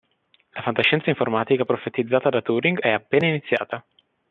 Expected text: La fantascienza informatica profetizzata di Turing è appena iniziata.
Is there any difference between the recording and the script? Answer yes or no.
yes